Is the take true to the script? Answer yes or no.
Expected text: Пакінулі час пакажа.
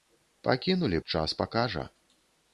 yes